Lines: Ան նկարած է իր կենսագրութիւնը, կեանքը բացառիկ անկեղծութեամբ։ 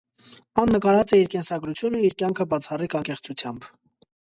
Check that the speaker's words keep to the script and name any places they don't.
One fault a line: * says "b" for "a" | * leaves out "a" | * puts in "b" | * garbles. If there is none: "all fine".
* puts in "իր"